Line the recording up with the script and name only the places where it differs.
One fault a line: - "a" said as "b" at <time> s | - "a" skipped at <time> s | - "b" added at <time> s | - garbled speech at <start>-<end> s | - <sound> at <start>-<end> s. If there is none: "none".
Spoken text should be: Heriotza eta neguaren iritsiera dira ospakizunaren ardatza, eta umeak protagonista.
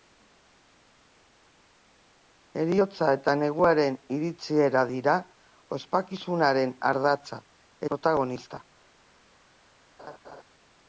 - "eta umeak" skipped at 7.4 s
- laugh at 10.0-10.4 s